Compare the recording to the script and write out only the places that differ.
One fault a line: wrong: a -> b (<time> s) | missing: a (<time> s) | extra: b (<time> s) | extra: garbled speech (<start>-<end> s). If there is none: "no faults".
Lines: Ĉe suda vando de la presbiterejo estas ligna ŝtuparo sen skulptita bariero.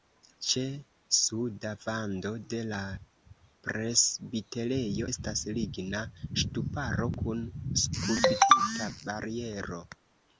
wrong: sen -> kun (7.2 s)